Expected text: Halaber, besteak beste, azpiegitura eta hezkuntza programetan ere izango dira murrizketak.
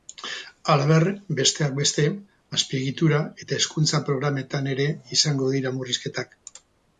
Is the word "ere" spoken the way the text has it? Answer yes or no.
yes